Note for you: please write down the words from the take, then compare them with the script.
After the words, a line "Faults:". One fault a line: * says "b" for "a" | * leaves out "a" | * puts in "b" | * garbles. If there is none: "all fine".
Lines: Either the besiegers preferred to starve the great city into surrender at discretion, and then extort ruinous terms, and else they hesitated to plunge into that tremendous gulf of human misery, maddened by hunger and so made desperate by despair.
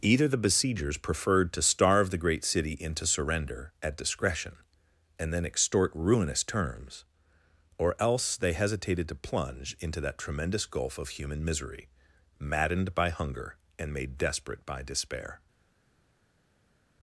Either the besiegers preferred to starve the great city into surrender at discretion, and then extort ruinous terms, or else they hesitated to plunge into that tremendous gulf of human misery, maddened by hunger and made desperate by despair.
Faults:
* says "or" for "and"
* leaves out "so"